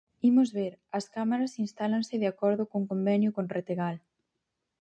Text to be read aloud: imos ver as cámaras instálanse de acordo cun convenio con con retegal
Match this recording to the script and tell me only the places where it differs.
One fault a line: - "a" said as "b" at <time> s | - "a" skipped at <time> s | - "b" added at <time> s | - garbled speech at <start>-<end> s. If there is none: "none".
- "con" skipped at 3.4 s